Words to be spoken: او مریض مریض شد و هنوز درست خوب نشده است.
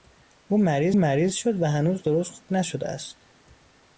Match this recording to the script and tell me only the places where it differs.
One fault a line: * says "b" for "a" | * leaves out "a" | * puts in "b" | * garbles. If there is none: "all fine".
all fine